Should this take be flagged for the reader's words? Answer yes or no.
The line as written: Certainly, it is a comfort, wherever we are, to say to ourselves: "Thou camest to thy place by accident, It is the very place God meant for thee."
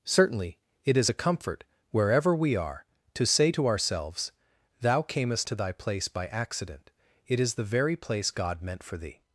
no